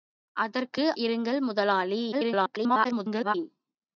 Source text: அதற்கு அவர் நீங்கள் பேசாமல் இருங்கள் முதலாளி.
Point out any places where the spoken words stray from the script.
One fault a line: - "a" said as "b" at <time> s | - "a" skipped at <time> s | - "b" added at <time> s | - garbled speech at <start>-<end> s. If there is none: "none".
- "அவர் நீங்கள் பேசாமல்" skipped at 0.9 s
- garbled speech at 2.1-3.3 s